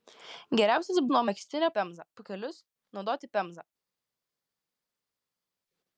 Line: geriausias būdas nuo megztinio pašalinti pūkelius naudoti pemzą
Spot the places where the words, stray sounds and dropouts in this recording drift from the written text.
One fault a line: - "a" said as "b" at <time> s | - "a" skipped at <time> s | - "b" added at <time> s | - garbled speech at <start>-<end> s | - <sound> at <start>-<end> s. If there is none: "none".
- "būdas" skipped at 1.0 s
- "pašalinti" said as "pemzą" at 1.8 s